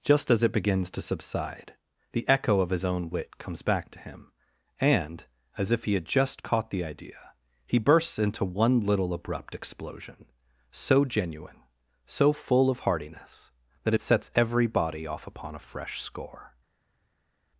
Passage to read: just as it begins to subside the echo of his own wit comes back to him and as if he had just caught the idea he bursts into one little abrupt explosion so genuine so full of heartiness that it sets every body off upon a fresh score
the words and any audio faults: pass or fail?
pass